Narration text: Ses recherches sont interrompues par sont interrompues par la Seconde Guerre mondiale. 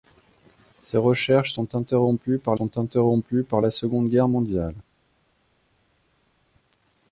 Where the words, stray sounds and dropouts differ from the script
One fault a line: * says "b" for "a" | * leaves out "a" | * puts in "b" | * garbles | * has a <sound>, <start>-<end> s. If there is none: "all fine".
all fine